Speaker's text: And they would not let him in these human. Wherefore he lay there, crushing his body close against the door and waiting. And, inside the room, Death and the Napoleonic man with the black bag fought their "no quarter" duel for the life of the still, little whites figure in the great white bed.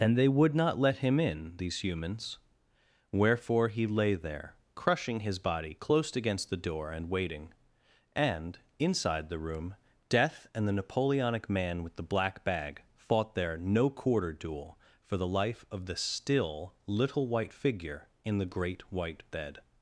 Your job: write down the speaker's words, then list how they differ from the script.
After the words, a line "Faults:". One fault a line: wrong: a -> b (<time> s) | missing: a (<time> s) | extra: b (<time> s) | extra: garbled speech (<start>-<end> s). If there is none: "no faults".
And they would not let him in these humans. Wherefore he lay there, crushing his body close against the door and waiting. And, inside the room, Death and the Napoleonic man with the black bag fought their "no quarter" duel for the life of the still, little white figure in the great white bed.
Faults:
wrong: human -> humans (1.8 s)
wrong: whites -> white (17.3 s)